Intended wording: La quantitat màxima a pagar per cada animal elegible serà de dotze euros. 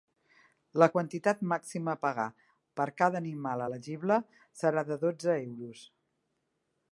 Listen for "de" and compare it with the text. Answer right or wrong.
right